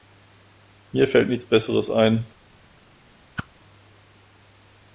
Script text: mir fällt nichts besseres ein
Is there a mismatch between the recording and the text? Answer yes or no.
no